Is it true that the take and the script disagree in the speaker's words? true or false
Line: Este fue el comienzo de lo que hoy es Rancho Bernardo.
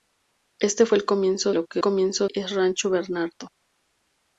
true